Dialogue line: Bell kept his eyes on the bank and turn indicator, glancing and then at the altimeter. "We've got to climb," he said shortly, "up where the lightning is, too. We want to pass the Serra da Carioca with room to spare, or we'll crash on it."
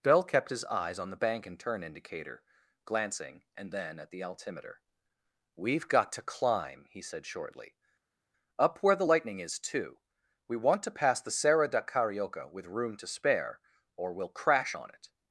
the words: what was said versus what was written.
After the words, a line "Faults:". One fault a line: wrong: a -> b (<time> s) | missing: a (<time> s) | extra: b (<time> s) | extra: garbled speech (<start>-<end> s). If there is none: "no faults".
Bell kept his eyes on the bank and turn indicator, glancing and then at the altimeter. "We've got to climb," he said shortly, "up where the lightning is, too. We want to pass the Serra da Carioca with room to spare, or we'll crash on it."
Faults:
no faults